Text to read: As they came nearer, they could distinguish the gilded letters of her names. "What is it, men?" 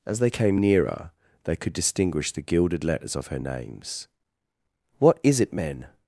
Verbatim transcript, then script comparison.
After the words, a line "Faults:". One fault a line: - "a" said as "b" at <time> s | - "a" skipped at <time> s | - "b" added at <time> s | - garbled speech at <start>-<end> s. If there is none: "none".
As they came nearer, they could distinguish the gilded letters of her names. "What is it, men?"
Faults:
none